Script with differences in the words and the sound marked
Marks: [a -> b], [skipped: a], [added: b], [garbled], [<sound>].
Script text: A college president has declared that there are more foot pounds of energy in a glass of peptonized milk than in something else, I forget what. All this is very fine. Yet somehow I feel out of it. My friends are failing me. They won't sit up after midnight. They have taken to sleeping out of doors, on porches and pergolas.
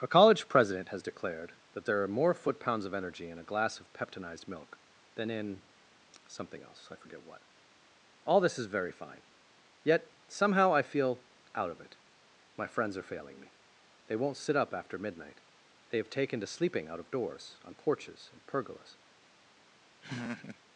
A college president has declared that there are more foot pounds of energy in a glass of peptonized milk than in something else, I forget what. All this is very fine. Yet somehow I feel out of it. My friends are failing me. They won't sit up after midnight. They have taken to sleeping out of doors, on porches and pergolas. [laugh]